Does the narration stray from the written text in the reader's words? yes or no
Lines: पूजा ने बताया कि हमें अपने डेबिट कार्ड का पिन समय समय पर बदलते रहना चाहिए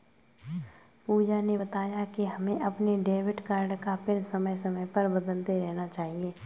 no